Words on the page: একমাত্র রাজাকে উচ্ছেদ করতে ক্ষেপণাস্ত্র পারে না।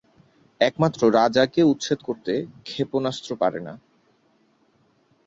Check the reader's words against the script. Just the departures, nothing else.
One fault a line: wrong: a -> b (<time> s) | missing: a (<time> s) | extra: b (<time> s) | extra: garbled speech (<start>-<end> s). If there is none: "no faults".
no faults